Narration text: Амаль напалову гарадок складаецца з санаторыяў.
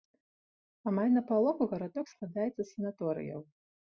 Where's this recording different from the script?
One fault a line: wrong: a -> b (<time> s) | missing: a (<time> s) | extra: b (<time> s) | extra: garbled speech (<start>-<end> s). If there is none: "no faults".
no faults